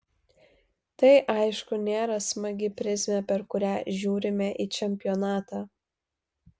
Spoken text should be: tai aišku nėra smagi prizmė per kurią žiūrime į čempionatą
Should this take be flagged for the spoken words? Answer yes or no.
no